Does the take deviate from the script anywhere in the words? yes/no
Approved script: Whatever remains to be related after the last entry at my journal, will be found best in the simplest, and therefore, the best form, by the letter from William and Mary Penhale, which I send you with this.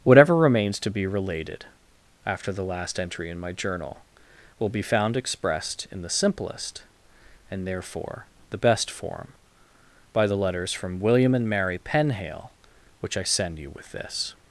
yes